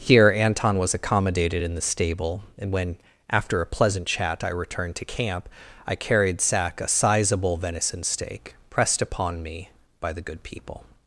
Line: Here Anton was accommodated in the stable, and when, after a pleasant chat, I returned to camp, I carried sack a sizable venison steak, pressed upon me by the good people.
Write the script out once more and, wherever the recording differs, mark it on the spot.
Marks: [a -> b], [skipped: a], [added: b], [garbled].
Here Anton was accommodated in the stable, and when, after a pleasant chat, I returned to camp, I carried sack a sizable venison steak, pressed upon me by the good people.